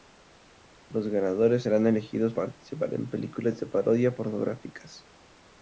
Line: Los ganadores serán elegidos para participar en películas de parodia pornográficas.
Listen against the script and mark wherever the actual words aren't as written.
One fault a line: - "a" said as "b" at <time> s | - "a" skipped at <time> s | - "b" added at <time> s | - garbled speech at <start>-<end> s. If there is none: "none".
- "para" skipped at 2.3 s